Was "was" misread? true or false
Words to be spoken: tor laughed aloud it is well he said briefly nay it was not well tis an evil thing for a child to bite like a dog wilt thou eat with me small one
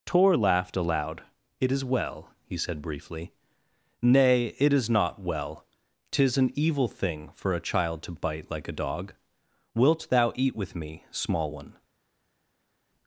true